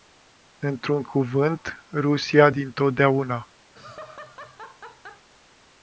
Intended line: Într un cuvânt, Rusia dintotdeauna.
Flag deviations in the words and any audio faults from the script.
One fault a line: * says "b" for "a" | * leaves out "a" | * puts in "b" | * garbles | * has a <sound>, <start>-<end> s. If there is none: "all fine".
* has a laugh, 3.7-5.3 s